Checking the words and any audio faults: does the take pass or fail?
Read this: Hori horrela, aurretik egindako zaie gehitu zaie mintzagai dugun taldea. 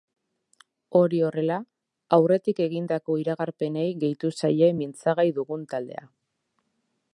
fail